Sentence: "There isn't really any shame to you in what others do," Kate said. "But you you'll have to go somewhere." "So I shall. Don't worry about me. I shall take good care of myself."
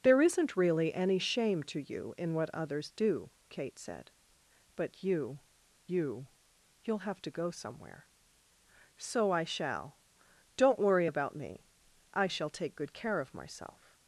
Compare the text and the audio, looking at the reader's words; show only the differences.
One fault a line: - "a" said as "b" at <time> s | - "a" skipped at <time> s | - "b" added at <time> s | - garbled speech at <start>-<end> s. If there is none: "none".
- "you" added at 5.9 s